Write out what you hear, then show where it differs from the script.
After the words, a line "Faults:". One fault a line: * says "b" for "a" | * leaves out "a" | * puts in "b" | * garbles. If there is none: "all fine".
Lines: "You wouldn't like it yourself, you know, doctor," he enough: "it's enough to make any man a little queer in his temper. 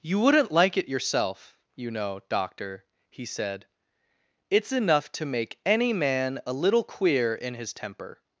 "You wouldn't like it yourself, you know, doctor," he said: "it's enough to make any man a little queer in his temper.
Faults:
* says "said" for "enough"